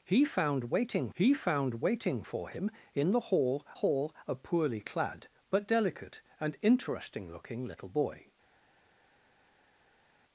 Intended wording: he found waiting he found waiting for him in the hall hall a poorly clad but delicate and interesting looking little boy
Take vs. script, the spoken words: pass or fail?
pass